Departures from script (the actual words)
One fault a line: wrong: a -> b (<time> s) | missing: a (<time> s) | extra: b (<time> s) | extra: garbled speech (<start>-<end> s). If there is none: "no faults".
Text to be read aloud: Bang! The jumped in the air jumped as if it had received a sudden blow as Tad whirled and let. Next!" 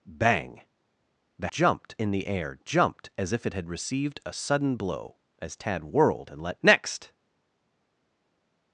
no faults